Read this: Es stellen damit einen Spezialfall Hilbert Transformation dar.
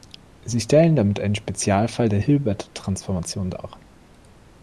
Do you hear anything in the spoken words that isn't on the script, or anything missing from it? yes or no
yes